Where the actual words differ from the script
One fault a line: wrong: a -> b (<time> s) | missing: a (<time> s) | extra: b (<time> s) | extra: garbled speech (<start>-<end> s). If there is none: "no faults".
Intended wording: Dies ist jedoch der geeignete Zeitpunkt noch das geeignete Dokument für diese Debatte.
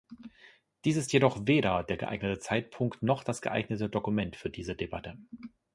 extra: weder (1.4 s)